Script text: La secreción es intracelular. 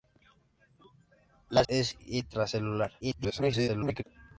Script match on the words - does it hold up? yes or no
no